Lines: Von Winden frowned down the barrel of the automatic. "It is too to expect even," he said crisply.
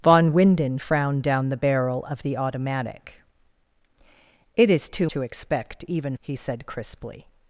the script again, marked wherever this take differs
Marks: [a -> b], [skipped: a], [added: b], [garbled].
Von Winden frowned down the barrel of the automatic. "It is too to expect even," he said crisply.